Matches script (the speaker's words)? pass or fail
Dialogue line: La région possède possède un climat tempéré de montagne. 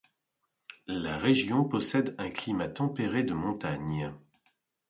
fail